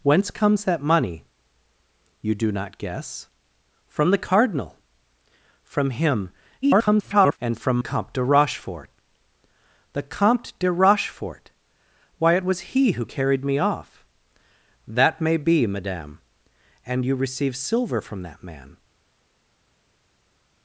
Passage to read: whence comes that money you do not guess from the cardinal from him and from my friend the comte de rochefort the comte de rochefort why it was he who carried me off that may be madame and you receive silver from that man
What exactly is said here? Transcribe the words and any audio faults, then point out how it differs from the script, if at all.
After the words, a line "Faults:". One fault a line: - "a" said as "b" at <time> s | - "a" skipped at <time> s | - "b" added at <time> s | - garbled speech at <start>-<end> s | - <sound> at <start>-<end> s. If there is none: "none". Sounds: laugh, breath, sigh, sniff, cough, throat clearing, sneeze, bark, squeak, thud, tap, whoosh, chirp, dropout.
whence comes that money you do not guess from the cardinal from him [garbled] and from comte de rochefort the comte de rochefort why it was he who carried me off that may be madame and you receive silver from that man
Faults:
- garbled speech at 6.6-7.4 s
- "my friend the" skipped at 7.8 s